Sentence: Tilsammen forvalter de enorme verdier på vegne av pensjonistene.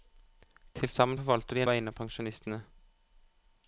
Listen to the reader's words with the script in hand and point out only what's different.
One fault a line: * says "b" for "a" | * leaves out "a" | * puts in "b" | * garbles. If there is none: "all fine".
* leaves out "enorme verdier på"